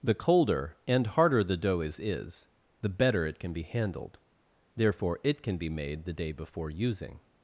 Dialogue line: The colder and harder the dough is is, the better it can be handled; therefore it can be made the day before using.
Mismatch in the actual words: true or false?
false